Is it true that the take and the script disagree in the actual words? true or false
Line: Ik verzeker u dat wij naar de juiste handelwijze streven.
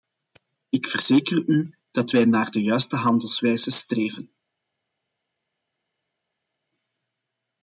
false